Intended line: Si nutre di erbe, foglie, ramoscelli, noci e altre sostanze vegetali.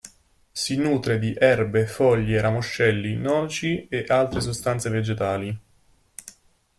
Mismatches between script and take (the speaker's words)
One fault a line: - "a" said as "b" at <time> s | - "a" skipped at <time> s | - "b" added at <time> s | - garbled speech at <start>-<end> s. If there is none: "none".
none